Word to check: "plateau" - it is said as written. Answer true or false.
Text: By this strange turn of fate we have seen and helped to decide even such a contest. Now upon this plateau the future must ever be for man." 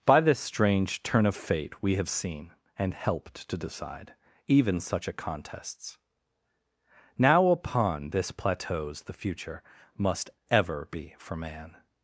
false